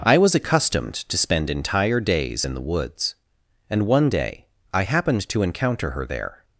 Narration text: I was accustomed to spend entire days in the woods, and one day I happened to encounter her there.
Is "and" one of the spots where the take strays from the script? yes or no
no